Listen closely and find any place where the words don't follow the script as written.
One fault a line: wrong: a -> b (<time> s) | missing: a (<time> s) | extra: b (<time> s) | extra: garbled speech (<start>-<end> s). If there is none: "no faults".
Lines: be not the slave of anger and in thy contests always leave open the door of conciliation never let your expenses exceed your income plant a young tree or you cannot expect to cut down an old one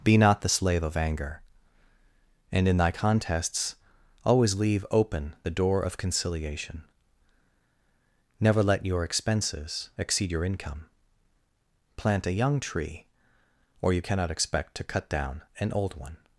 no faults